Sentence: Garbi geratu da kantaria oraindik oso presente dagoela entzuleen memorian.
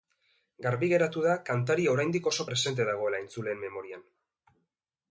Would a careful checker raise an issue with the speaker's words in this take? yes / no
no